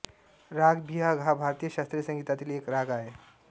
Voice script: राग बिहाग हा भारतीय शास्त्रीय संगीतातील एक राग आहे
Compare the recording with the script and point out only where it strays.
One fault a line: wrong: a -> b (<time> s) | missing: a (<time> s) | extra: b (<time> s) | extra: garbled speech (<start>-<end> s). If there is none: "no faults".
no faults